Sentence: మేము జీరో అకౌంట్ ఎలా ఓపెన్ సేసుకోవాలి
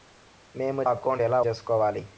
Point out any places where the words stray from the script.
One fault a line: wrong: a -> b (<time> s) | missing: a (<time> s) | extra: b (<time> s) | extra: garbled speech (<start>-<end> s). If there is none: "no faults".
missing: జీరో (0.8 s)
missing: ఓపెన్ (1.4 s)